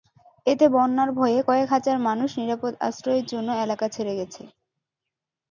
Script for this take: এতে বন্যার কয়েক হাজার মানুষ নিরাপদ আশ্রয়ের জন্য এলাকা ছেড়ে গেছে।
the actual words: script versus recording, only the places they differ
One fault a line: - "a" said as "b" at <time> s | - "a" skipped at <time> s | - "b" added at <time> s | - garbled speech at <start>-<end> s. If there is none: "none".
- "ভয়ে" added at 1.2 s